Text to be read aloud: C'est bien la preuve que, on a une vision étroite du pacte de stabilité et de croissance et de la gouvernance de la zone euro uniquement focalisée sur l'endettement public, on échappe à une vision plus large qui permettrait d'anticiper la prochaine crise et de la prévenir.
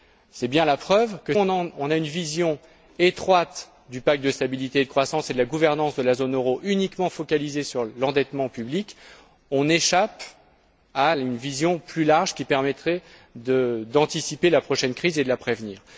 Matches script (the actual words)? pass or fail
pass